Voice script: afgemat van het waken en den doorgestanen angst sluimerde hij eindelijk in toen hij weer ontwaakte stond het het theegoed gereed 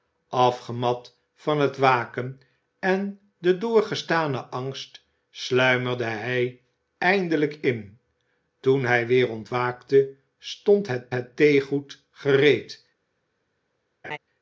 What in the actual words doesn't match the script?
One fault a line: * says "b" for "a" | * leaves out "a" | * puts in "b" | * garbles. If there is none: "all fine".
all fine